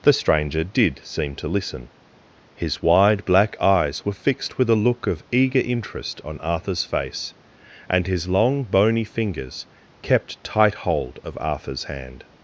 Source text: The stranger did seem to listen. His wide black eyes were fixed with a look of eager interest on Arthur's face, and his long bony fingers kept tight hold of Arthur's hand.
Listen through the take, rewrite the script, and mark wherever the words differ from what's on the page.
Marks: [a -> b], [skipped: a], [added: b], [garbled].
The stranger did seem to listen. His wide black eyes were fixed with a look of eager interest on Arthur's face, and his long bony fingers kept tight hold of Arthur's hand.